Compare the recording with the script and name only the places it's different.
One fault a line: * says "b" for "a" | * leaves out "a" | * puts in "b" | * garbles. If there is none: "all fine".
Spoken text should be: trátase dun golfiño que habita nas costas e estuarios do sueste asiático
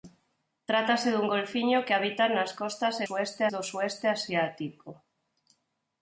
* says "sueste" for "estuarios"